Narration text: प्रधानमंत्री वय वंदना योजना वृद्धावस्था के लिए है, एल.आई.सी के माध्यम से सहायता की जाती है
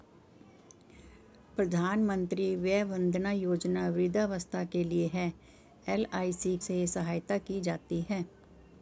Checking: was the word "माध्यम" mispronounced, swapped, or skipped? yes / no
yes